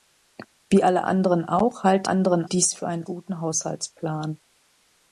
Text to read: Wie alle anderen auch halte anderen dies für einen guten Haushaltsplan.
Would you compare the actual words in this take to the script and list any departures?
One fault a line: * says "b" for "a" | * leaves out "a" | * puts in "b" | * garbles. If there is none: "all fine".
all fine